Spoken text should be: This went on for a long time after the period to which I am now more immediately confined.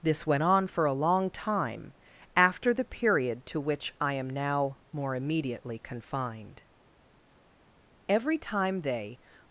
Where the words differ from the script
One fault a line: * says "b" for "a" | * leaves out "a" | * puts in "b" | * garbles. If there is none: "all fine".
* puts in "Every time they"